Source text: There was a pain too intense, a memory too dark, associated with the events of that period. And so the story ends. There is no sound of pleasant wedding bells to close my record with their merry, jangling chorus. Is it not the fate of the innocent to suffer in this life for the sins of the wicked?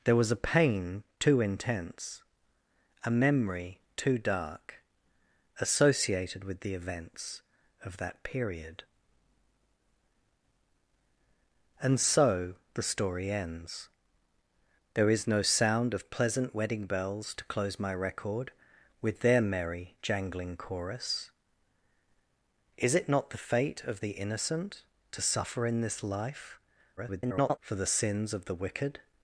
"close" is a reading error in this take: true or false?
false